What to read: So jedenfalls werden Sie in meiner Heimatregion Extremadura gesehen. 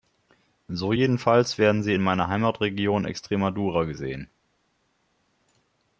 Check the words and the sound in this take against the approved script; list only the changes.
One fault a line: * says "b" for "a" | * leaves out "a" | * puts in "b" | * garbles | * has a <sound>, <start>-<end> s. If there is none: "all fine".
all fine